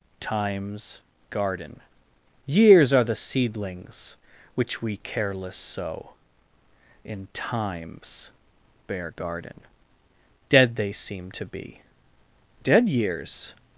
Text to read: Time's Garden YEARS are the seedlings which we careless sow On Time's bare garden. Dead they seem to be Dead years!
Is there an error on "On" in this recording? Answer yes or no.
yes